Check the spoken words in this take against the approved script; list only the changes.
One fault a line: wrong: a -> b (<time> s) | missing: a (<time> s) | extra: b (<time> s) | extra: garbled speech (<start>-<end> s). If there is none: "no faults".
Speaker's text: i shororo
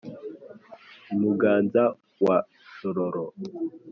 extra: muganza wa (1.2 s)